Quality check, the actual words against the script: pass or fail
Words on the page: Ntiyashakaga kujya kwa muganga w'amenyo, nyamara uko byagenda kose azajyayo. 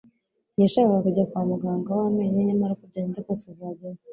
pass